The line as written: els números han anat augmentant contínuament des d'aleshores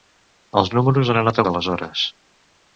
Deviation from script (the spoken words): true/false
true